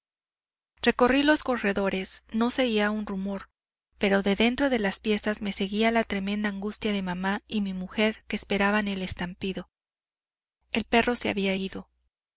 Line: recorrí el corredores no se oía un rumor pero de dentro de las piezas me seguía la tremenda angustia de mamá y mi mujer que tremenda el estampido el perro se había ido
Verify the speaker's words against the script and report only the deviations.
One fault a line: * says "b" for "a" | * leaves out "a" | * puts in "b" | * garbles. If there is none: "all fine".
* says "los" for "el"
* says "esperaban" for "tremenda"